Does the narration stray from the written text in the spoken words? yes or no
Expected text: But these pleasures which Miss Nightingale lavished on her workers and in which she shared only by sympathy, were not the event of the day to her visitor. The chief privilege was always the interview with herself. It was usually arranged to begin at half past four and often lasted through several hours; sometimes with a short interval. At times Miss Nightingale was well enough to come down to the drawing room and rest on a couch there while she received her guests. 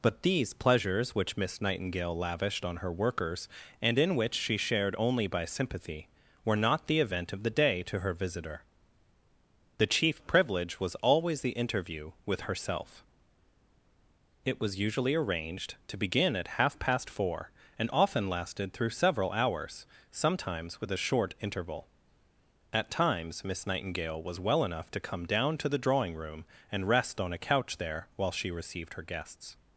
no